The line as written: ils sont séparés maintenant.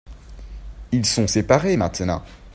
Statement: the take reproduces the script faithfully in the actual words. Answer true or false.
true